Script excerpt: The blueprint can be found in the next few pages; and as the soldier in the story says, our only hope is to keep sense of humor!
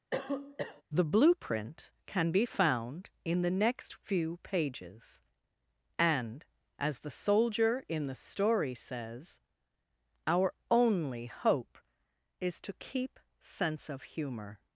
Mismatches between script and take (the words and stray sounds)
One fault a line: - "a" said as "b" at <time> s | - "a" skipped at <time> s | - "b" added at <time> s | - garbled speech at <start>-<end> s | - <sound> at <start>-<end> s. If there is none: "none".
- cough at 0.1-0.8 s